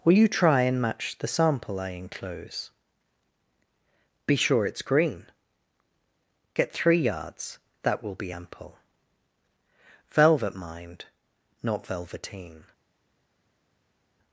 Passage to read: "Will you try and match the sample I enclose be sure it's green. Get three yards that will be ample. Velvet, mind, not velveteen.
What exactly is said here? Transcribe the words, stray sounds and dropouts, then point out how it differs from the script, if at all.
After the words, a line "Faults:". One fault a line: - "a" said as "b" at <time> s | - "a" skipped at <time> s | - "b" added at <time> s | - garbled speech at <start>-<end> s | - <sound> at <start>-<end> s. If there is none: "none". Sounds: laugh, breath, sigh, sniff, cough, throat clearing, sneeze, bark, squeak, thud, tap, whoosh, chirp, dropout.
"Will you try and match the sample I enclose be sure it's green. Get three yards that will be ample. Velvet, mind, not velveteen.
Faults:
none